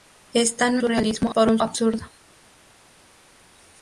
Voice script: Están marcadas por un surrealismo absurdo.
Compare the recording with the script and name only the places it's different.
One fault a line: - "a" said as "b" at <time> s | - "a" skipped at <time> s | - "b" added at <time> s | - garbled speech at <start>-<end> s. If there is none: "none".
- "marcadas" said as "surrealismo" at 0.8 s
- "surrealismo" skipped at 1.6 s